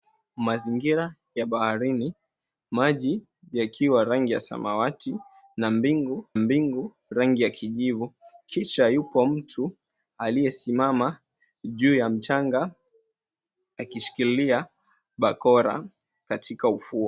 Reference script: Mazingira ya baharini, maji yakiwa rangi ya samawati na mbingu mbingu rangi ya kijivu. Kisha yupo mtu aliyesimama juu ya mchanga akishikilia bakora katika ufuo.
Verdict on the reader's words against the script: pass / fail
pass